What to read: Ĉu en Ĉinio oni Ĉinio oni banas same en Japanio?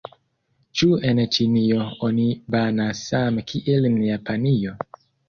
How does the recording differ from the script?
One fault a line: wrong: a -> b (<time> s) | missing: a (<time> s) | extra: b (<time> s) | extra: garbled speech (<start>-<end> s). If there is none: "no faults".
missing: Ĉinio oni (2.3 s)
extra: kiel (3.5 s)